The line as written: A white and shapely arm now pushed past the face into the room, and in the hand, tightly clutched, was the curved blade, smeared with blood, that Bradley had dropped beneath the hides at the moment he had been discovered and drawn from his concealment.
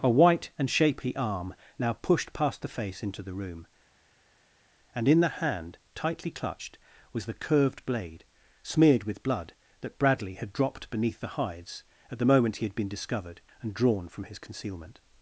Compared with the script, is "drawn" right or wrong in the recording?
right